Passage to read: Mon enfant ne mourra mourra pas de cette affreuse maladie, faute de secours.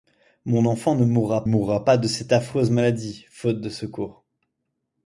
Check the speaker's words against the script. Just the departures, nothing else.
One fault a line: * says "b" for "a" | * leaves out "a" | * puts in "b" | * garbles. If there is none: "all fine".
all fine